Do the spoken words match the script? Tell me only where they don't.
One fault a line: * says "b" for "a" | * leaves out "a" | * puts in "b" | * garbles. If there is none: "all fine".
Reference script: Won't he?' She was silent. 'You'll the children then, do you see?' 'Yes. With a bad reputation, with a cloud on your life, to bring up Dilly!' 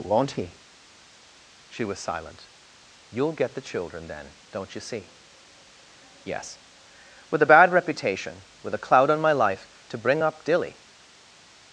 * puts in "get"
* says "don't" for "do"
* says "my" for "your"